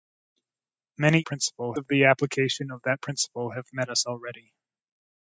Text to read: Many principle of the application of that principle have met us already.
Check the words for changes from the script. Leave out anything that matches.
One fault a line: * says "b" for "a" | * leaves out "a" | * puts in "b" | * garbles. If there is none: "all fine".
all fine